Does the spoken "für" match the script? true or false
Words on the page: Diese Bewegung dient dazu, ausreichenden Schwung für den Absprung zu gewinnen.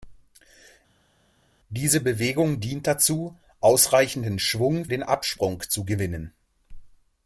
false